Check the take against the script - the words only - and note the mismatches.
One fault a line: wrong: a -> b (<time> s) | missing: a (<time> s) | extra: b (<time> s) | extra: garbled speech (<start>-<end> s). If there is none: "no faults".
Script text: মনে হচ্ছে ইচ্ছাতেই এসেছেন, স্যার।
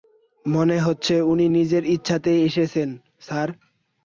extra: উনি নিজের (1.3 s)